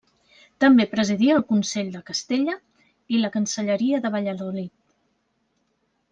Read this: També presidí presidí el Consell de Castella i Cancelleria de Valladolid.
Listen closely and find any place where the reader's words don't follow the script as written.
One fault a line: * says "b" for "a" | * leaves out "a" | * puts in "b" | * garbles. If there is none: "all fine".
* leaves out "presidí"
* puts in "la"